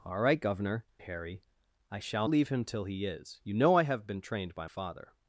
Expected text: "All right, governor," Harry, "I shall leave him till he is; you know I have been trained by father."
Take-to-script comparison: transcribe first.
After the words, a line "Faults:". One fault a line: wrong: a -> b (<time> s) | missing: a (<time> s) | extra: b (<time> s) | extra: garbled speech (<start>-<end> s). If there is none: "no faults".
"All right, governor," Harry, "I shall leave him till he is; you know I have been trained by father."
Faults:
no faults